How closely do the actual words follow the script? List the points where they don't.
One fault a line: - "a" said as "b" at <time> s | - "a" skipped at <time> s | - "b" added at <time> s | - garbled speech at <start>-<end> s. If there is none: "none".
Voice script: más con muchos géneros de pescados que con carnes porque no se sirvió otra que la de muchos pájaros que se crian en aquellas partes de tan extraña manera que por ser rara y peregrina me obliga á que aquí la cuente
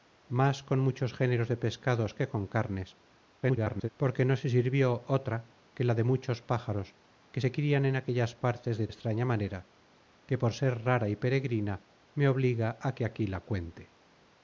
- garbled speech at 3.4-3.9 s
- "tan" skipped at 8.9 s